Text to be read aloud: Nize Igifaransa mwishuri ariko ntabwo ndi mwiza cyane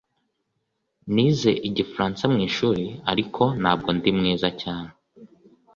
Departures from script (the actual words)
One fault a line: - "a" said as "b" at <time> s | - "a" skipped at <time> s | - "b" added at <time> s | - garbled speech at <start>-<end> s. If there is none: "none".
none